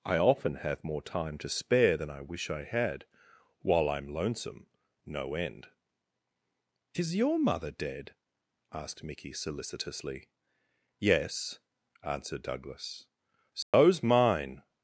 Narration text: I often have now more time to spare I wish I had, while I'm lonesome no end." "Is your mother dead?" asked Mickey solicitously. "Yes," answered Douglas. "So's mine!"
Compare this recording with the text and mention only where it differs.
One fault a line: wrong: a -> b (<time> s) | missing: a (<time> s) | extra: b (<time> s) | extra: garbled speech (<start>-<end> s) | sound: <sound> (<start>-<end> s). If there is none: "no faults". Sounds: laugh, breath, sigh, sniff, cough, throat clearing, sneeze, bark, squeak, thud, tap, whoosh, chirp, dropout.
missing: now (0.8 s)
extra: than (1.9 s)
sound: dropout (13.6-13.7 s)